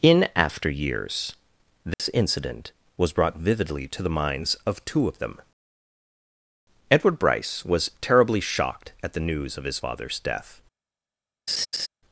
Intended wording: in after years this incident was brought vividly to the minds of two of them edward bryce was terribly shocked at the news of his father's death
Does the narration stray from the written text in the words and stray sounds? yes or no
yes